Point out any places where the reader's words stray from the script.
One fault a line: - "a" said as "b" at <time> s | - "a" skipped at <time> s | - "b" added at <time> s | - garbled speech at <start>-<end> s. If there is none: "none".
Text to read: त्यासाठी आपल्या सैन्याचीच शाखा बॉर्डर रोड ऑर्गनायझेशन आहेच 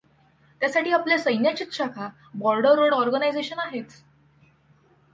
none